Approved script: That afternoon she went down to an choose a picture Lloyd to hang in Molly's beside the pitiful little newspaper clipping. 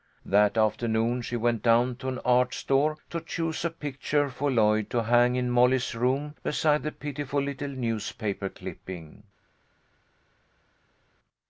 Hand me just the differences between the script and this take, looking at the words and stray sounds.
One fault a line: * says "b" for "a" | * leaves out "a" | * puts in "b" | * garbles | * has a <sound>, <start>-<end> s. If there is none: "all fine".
* puts in "art store to"
* puts in "for"
* puts in "room"